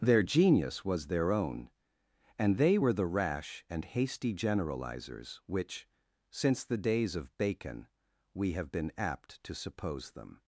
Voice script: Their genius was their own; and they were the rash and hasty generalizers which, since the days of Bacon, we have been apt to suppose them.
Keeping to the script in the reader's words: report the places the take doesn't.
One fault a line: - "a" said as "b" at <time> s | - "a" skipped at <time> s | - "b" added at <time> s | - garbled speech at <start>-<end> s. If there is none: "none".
none